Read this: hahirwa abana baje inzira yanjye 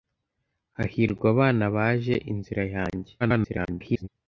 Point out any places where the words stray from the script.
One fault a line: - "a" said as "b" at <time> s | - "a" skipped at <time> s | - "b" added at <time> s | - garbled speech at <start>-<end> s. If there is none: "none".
- garbled speech at 3.2-4.1 s